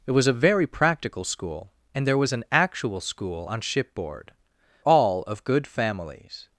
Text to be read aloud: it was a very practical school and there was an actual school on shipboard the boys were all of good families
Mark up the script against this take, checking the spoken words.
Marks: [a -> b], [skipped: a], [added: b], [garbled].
it was a very practical school and there was an actual school on shipboard [skipped: the boys were] all of good families